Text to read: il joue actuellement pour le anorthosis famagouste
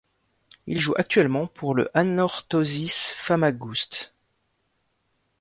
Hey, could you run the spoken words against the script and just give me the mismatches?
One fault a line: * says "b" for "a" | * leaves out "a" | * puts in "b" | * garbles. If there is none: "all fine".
all fine